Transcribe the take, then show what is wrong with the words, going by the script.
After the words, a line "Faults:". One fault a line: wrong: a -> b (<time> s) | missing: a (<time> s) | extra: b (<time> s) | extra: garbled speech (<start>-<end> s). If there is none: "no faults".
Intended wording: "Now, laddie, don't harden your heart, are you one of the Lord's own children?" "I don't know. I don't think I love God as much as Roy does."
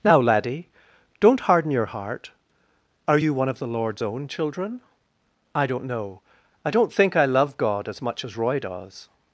"Now, laddie, don't harden your heart, are you one of the Lord's own children?" "I don't know. I don't think I love God as much as Roy does."
Faults:
no faults